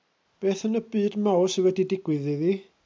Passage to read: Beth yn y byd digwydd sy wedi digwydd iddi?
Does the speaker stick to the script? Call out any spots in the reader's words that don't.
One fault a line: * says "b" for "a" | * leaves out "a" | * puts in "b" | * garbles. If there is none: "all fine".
* says "mawr" for "digwydd"